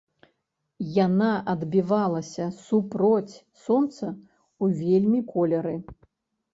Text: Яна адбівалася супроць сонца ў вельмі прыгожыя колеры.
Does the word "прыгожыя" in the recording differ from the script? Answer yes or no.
yes